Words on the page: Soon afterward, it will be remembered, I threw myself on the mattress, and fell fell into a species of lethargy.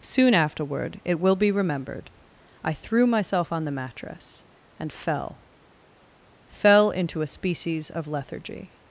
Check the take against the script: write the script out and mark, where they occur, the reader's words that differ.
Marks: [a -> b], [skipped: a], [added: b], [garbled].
Soon afterward, it will be remembered, I threw myself on the mattress, and fell fell into a species of lethargy.